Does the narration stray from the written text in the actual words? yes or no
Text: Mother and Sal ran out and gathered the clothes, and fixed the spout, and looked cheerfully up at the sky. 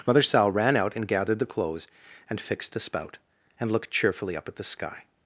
yes